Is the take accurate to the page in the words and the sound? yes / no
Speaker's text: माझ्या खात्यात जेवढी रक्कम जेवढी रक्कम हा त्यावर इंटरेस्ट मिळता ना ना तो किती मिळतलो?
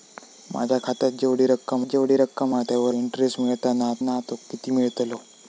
yes